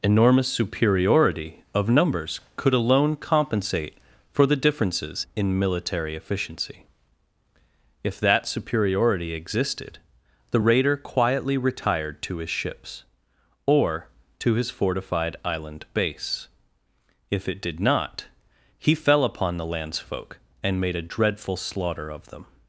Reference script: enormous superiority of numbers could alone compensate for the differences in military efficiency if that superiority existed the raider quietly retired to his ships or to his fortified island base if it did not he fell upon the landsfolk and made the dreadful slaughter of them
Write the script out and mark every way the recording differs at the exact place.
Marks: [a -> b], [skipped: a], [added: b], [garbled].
enormous superiority of numbers could alone compensate for the differences in military efficiency if that superiority existed the raider quietly retired to his ships or to his fortified island base if it did not he fell upon the landsfolk and made [the -> a] dreadful slaughter of them